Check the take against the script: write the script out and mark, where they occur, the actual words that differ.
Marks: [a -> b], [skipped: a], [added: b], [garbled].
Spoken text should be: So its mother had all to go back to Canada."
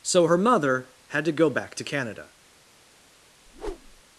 So [its -> her] mother had [skipped: all] to go back to Canada."